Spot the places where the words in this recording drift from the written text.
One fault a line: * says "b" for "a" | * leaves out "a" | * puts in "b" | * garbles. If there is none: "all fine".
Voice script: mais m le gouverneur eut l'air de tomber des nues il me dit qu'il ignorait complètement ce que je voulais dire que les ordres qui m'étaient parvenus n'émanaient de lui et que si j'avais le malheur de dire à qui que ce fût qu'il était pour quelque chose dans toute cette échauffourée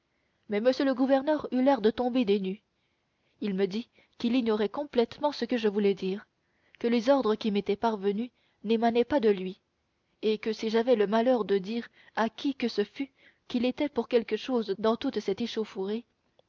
* puts in "pas"